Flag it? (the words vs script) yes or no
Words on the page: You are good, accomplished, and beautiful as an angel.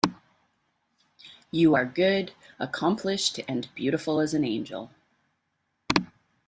no